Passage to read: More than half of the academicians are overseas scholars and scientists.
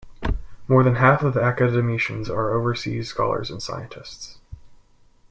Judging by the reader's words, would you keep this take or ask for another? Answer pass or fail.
pass